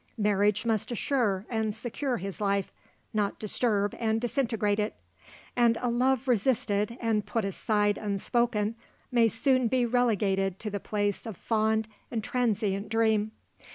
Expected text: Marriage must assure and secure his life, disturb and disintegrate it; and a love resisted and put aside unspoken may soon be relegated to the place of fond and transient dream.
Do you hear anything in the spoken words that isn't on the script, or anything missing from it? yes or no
yes